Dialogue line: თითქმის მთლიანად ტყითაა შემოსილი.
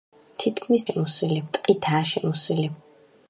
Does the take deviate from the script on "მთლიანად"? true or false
true